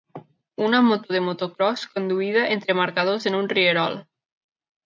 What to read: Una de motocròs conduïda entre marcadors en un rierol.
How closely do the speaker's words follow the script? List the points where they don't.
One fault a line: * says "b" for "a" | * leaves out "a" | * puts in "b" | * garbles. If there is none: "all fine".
* puts in "moto"